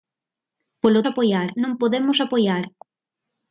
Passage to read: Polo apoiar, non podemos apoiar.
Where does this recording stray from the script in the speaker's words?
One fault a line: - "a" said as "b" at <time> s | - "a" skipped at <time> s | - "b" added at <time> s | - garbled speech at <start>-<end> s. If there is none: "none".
none